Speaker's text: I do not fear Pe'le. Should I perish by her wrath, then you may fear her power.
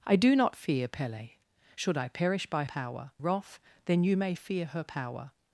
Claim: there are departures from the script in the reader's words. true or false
true